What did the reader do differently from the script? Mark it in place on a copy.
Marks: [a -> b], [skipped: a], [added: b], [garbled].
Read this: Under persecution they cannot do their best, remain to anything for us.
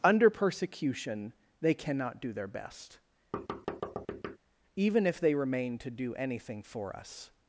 Under persecution they cannot do their best, [added: even if they] remain to [added: do] anything for us.